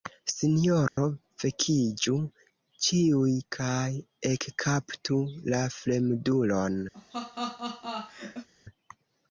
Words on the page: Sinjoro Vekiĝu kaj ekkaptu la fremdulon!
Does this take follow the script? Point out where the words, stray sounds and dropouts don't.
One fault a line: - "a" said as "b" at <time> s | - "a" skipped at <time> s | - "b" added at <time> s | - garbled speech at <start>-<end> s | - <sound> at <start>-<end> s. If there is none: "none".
- dropout at 0.9-1.0 s
- "ĉiuj" added at 2.9 s
- laugh at 6.9-8.5 s